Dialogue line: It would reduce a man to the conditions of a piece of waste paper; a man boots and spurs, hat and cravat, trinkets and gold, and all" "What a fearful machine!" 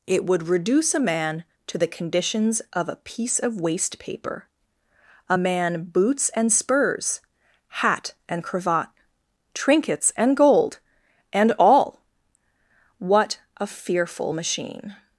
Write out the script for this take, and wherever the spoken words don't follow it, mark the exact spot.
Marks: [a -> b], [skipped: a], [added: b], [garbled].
It would reduce a man to the conditions of a piece of waste paper; a man boots and spurs, hat and cravat, trinkets and gold, and all" "What a fearful machine!"